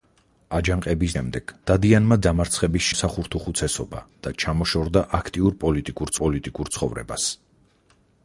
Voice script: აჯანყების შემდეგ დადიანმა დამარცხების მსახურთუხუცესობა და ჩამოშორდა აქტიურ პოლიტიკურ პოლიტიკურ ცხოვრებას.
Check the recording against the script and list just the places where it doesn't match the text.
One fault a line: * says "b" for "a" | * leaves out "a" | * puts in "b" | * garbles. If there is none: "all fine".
all fine